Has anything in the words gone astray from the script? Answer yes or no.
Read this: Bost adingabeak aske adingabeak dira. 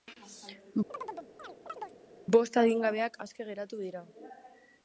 yes